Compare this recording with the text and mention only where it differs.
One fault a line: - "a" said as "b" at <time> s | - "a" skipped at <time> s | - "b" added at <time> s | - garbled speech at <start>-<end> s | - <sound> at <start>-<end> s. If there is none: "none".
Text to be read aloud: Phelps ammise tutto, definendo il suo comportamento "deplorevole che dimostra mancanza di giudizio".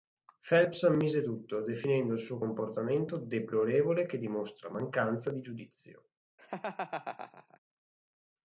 - laugh at 6.4-7.6 s